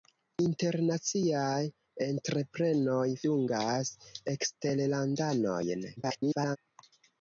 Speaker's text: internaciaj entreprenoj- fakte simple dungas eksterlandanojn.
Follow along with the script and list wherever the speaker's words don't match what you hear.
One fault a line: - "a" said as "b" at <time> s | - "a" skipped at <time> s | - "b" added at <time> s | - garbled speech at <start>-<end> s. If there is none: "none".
- "fakte simple" skipped at 3.2 s
- garbled speech at 6.0-6.6 s